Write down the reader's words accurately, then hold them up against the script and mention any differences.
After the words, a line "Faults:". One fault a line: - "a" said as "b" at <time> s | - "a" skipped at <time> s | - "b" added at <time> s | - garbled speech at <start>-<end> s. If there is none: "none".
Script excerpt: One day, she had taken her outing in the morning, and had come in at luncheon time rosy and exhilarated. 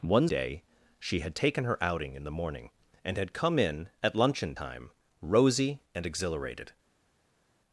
One day, she had taken her outing in the morning, and had come in at luncheon time rosy and exhilarated.
Faults:
none